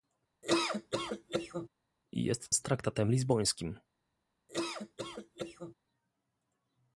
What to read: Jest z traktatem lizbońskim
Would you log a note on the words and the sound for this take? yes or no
yes